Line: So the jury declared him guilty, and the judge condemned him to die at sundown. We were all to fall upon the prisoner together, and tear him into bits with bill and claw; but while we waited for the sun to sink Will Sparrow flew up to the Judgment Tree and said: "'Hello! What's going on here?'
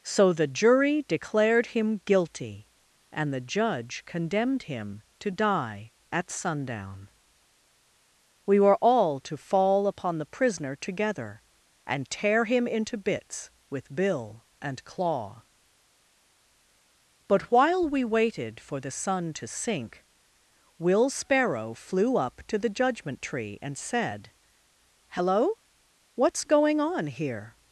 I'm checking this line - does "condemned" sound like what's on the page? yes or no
yes